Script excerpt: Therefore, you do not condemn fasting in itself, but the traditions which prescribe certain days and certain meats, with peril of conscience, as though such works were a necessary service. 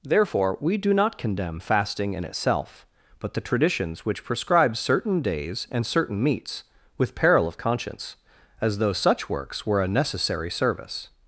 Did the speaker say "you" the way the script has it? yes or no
no